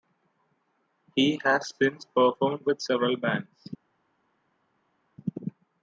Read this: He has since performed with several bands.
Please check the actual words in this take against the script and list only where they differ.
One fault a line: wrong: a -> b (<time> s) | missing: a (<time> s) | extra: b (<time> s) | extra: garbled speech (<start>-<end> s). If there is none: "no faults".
no faults